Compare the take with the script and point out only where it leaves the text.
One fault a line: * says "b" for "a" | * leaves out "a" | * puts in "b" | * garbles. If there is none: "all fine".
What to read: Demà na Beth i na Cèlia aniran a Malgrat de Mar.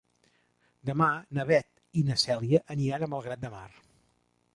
all fine